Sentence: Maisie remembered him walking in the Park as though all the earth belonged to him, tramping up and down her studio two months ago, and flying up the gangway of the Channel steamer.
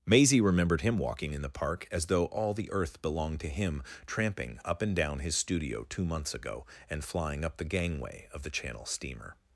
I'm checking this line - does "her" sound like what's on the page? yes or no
no